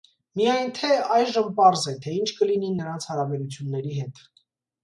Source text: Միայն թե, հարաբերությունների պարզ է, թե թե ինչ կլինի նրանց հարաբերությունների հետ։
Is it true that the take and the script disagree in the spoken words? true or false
true